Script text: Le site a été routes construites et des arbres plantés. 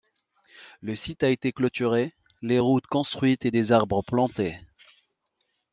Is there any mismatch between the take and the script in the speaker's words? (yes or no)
yes